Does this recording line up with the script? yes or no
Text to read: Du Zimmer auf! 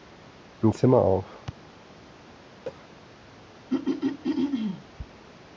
yes